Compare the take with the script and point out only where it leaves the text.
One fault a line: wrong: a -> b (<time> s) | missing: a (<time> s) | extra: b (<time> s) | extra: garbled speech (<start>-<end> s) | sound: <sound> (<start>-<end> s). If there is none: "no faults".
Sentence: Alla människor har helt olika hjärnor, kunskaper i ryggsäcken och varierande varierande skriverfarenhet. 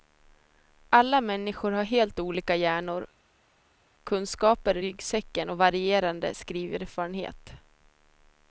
missing: varierande (6.4 s)